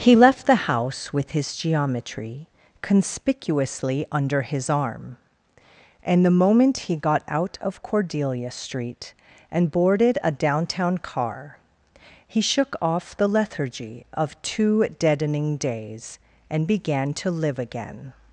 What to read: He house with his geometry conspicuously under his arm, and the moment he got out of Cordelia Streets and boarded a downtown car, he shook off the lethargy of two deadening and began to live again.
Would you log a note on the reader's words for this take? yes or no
yes